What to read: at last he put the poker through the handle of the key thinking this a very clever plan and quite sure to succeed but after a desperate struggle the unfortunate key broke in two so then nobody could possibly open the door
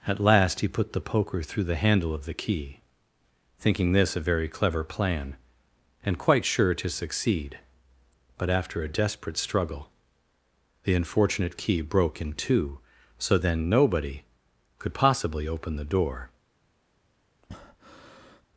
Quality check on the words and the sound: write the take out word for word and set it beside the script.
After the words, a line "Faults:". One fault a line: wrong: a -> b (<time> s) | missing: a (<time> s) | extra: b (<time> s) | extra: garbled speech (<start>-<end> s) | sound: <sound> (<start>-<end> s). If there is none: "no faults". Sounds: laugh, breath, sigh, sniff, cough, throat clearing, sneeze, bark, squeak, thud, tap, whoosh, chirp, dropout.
at last he put the poker through the handle of the key thinking this a very clever plan and quite sure to succeed but after a desperate struggle the unfortunate key broke in two so then nobody could possibly open the door
Faults:
sound: breath (17.4-18.5 s)